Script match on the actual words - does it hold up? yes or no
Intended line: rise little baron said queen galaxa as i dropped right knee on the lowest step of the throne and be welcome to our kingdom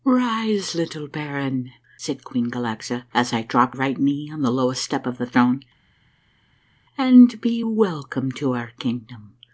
yes